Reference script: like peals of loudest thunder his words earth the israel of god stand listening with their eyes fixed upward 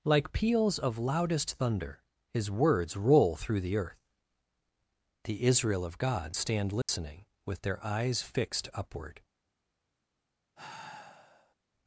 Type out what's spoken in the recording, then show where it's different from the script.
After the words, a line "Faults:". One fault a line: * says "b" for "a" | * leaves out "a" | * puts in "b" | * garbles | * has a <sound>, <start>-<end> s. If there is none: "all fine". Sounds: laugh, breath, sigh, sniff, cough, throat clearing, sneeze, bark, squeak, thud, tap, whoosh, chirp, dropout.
like peals of loudest thunder his words roll through the earth the israel of god stand listening with their eyes fixed upward
Faults:
* puts in "roll through the"
* has a dropout, 6.8-6.9 s
* has a sigh, 10.5-11.5 s